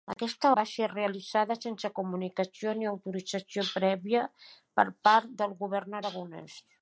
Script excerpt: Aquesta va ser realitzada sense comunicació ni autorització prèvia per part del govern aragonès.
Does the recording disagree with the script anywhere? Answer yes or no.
no